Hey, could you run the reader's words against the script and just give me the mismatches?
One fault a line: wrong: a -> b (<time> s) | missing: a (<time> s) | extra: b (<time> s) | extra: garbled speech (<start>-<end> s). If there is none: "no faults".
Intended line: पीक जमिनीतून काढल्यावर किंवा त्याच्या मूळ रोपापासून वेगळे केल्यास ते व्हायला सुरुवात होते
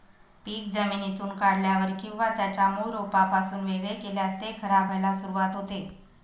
extra: खराब (4.6 s)